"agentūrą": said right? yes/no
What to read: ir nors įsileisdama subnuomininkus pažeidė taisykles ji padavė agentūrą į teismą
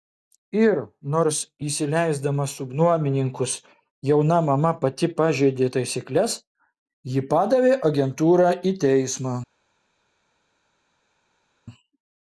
yes